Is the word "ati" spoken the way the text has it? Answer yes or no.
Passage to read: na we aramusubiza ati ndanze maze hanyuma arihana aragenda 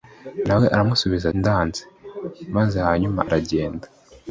no